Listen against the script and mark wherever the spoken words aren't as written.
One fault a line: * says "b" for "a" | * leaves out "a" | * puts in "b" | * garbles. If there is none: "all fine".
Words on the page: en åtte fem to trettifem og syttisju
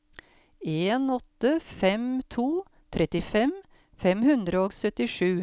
* puts in "fem hundre"